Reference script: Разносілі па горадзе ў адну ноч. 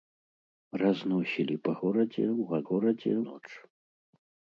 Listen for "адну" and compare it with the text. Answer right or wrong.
wrong